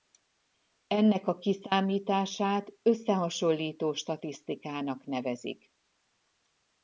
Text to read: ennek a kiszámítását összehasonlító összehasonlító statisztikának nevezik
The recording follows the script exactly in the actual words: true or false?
false